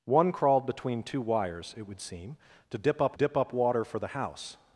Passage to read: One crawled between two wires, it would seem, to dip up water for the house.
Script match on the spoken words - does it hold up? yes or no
no